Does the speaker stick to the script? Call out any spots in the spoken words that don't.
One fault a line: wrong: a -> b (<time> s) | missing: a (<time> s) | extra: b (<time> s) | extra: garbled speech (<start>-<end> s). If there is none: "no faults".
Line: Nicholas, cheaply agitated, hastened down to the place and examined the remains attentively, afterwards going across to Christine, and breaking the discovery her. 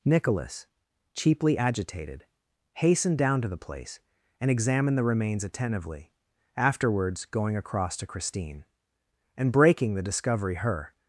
no faults